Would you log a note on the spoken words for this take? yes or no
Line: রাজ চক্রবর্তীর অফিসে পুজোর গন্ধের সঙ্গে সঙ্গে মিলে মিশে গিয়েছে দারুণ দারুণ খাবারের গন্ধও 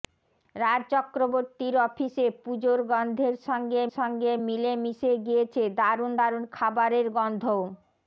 no